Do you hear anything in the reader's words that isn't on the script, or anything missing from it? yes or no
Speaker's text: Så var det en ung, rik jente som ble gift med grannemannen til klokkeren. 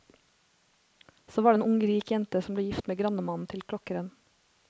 no